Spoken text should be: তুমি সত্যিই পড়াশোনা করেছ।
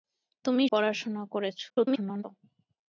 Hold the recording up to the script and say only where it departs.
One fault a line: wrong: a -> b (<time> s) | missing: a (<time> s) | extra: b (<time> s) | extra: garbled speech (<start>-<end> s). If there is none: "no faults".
missing: সত্যিই (0.7 s)
extra: garbled speech (1.7-2.2 s)